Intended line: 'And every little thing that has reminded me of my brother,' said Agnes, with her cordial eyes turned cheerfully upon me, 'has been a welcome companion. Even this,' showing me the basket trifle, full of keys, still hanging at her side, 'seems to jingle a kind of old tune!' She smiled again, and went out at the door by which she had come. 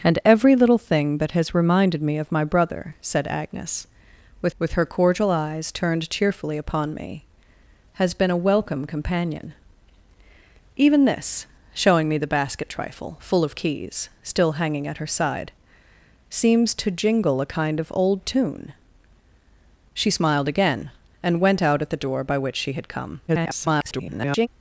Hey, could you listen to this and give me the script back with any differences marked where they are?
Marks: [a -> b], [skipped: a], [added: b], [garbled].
'And every little thing that has reminded me of my brother,' said Agnes, with [added: with] her cordial eyes turned cheerfully upon me, 'has been a welcome companion. Even this,' showing me the basket trifle, full of keys, still hanging at her side, 'seems to jingle a kind of old tune!' She smiled again, and went out at the door by which she had come. [garbled]